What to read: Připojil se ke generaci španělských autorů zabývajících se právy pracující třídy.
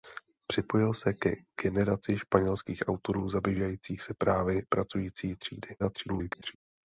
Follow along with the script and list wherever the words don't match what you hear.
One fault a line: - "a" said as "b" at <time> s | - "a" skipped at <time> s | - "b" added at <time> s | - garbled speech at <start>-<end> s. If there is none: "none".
- garbled speech at 5.8-6.6 s